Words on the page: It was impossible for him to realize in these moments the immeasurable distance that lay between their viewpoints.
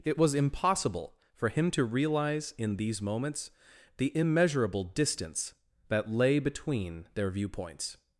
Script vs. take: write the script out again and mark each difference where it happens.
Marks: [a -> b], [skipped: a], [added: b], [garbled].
It was impossible for him to realize in these moments the immeasurable distance that lay between their viewpoints.